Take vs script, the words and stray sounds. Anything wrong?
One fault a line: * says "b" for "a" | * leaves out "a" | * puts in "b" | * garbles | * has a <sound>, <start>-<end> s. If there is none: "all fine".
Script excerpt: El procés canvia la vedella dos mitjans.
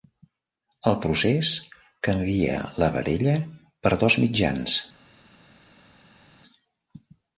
* puts in "per"